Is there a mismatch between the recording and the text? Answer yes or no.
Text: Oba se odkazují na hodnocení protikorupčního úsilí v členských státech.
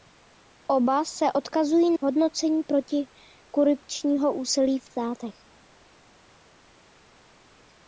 yes